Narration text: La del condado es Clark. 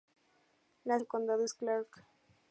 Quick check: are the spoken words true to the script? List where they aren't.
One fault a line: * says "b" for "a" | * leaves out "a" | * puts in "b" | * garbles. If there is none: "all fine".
all fine